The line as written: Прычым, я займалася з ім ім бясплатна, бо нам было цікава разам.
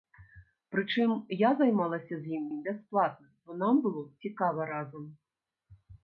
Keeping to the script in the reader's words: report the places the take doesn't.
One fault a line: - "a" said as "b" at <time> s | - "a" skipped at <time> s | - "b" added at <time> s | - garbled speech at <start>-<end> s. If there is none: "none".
none